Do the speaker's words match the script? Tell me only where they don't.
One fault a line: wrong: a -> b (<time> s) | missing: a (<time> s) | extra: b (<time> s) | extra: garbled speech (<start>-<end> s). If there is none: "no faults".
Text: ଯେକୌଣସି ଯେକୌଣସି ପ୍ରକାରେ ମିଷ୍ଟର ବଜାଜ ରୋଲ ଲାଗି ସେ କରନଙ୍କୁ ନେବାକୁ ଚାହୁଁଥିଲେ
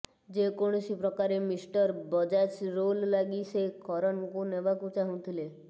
missing: ଯେକୌଣସି (0.9 s)